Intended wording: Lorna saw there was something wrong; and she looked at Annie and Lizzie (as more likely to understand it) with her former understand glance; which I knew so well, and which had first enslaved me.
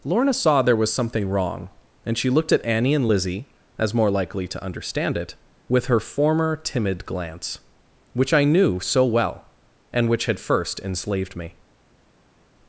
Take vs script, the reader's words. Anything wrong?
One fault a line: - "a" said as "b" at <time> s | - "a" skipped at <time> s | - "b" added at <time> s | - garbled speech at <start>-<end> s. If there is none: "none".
- "understand" said as "timid" at 6.5 s